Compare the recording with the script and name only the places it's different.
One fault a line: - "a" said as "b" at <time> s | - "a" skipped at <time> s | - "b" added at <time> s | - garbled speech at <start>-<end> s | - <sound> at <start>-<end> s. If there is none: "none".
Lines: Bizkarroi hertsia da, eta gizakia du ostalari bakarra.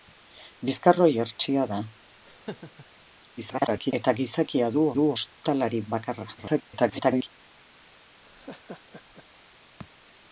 - laugh at 2.2-2.9 s
- garbled speech at 3.4-3.9 s
- "du" added at 5.0 s
- garbled speech at 6.4-7.3 s
- laugh at 8.2-9.3 s